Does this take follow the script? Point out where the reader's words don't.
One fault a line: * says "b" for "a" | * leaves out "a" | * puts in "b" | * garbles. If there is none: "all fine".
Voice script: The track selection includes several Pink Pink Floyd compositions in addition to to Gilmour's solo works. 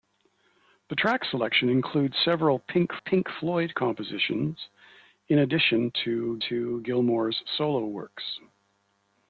all fine